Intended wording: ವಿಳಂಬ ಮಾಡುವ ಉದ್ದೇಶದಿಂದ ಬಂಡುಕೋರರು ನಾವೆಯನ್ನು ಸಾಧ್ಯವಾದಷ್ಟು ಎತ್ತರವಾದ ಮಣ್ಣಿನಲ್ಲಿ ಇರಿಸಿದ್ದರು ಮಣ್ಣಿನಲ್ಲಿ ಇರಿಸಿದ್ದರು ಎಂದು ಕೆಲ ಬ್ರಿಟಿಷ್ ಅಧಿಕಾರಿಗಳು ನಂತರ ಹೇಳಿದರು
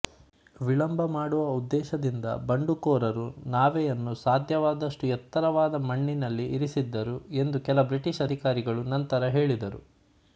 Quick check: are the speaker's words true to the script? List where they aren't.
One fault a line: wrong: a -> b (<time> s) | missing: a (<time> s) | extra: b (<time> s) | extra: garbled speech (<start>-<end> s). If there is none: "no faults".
missing: ಮಣ್ಣಿನಲ್ಲಿ ಇರಿಸಿದ್ದರು (7.2 s)